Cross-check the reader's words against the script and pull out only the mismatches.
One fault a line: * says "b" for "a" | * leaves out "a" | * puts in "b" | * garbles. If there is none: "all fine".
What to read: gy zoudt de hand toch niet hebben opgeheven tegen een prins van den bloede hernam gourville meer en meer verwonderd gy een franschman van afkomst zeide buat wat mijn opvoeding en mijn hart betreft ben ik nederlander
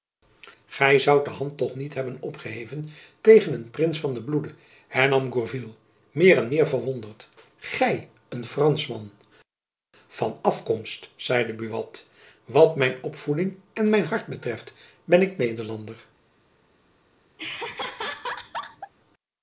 all fine